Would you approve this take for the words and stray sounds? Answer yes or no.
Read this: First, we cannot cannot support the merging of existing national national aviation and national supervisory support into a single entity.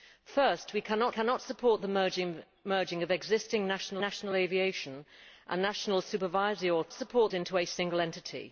yes